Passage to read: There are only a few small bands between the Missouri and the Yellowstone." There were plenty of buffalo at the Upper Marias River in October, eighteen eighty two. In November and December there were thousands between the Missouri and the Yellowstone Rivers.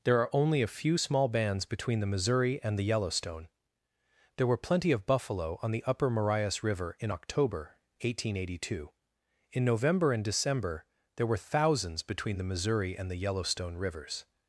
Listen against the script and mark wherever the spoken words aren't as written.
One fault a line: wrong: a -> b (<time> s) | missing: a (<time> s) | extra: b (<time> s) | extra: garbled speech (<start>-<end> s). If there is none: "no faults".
wrong: at -> on (5.6 s)